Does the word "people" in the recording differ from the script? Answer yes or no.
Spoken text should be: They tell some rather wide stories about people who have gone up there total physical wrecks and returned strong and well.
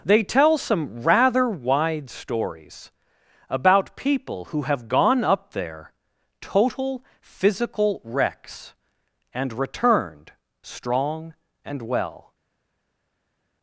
no